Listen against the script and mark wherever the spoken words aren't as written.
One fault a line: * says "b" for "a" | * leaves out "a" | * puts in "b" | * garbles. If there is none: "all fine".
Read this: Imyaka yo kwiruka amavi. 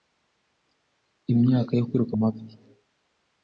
all fine